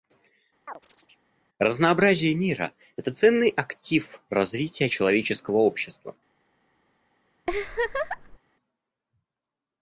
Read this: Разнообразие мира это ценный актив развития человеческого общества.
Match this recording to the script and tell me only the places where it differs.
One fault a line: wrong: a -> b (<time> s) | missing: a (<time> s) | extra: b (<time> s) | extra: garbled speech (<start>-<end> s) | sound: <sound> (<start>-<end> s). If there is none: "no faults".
sound: chirp (0.7-1.2 s)
sound: laugh (7.5-8.4 s)